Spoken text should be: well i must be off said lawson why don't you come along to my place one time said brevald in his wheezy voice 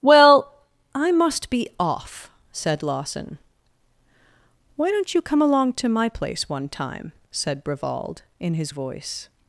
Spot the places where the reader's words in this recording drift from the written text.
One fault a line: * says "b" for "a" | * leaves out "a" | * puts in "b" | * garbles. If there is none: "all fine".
* leaves out "wheezy"